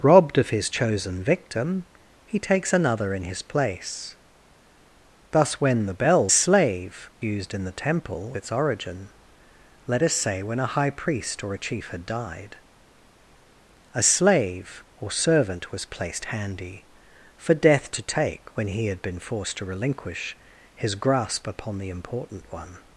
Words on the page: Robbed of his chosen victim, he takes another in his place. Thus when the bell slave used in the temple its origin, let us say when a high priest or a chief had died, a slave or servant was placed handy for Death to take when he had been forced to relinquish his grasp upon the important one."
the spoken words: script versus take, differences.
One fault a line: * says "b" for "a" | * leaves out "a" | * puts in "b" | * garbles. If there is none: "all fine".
all fine